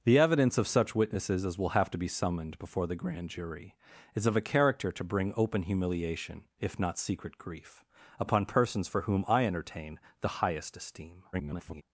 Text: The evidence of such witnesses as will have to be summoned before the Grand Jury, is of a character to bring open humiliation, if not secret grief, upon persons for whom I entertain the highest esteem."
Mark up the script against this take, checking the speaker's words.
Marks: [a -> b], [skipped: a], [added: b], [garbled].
The evidence of such witnesses as will have to be summoned before the Grand Jury, is of a character to bring open humiliation, if not secret grief, upon persons for whom I entertain the highest esteem." [garbled]